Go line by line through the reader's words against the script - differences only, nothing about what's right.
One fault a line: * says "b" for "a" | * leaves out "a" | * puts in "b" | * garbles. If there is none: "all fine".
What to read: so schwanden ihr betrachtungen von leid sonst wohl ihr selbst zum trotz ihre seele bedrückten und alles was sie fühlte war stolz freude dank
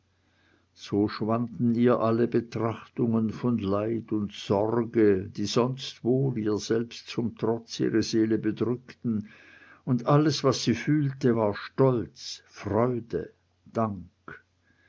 * puts in "alle"
* puts in "und sorge die"